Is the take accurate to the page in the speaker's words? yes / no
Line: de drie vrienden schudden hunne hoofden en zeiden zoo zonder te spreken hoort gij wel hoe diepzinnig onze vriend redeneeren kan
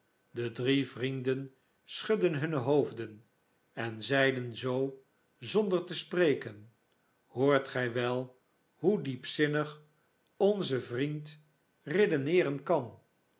yes